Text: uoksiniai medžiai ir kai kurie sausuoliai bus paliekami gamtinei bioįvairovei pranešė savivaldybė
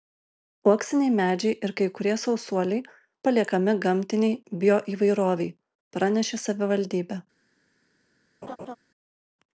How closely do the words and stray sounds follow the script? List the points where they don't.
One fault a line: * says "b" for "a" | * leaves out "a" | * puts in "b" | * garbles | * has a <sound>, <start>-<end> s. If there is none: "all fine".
* leaves out "bus"
* has a laugh, 8.4-8.8 s